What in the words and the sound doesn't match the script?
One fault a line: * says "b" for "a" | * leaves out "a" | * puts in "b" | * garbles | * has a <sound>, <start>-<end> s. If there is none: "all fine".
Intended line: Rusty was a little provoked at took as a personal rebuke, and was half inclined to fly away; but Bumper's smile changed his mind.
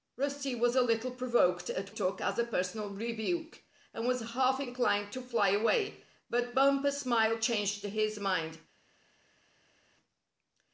all fine